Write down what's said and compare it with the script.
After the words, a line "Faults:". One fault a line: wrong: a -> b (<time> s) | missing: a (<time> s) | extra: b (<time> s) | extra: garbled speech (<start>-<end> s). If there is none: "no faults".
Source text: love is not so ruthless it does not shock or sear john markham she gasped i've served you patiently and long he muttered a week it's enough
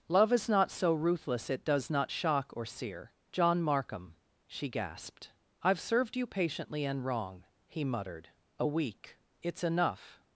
love is not so ruthless it does not shock or sear john markham she gasped i've served you patiently and wrong he muttered a week it's enough
Faults:
wrong: long -> wrong (7.0 s)